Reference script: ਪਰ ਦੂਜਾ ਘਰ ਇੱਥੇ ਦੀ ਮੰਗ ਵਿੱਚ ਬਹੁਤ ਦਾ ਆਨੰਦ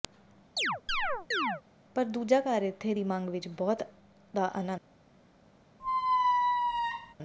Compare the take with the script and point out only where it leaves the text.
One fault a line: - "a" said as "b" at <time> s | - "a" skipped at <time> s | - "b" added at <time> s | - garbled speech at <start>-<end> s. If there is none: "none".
none